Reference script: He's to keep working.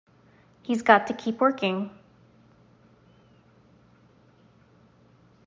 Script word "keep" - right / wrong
right